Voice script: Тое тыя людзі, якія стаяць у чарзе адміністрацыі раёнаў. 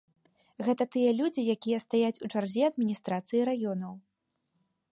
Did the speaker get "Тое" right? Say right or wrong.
wrong